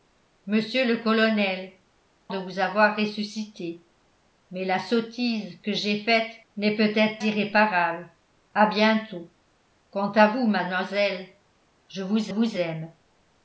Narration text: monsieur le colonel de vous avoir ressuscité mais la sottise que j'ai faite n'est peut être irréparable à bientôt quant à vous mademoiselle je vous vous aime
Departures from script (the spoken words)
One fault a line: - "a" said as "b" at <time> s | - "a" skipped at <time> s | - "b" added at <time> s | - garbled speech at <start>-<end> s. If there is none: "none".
none